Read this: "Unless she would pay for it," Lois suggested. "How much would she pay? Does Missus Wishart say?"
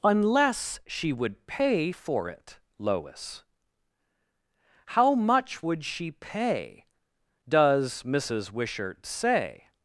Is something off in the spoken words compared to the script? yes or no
yes